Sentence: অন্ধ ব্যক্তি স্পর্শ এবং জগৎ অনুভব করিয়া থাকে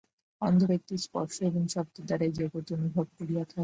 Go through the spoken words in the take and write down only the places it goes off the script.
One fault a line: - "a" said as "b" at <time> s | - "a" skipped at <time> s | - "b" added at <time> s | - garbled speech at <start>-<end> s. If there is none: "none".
- "শব্দের দ্বারা এই" added at 1.7 s